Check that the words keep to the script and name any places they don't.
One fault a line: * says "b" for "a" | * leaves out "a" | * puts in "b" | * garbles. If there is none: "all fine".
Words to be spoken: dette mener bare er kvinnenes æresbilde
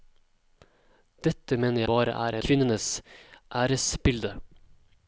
all fine